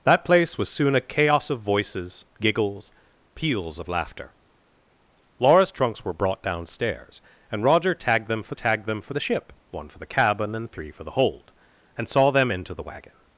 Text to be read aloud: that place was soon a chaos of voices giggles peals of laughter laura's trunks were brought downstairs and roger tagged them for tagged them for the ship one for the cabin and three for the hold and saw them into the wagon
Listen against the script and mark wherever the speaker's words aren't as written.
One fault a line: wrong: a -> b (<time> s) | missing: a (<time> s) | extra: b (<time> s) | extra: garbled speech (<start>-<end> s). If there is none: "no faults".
no faults